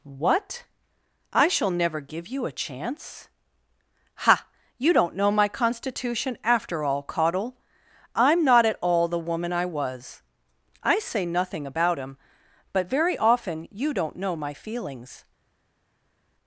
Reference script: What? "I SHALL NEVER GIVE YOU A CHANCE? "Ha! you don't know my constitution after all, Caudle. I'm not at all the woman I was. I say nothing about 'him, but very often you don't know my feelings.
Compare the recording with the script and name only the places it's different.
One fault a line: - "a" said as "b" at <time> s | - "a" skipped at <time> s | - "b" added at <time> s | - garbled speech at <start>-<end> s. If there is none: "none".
none